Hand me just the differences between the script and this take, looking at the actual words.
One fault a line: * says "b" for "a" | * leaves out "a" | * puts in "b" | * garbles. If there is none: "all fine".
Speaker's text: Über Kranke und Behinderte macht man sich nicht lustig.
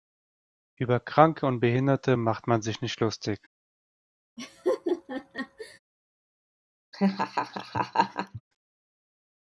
all fine